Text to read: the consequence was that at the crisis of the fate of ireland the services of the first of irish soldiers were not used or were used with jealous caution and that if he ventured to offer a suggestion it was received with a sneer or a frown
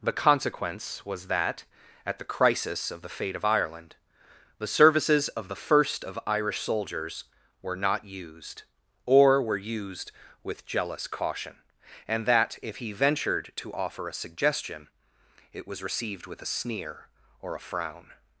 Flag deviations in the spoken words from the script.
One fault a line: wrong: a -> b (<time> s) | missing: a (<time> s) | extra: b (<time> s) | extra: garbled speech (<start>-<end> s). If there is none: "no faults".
no faults